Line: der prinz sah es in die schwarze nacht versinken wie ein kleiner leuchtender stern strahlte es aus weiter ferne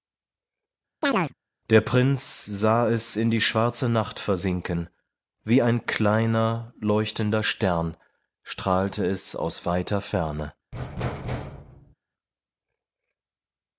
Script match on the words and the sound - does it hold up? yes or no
no